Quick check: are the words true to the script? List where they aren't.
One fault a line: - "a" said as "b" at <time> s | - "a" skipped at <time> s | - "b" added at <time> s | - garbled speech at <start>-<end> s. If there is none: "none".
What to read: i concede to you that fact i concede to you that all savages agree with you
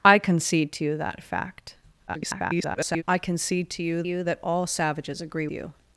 - garbled speech at 2.1-3.0 s
- "you" added at 4.0 s
- "with" skipped at 5.5 s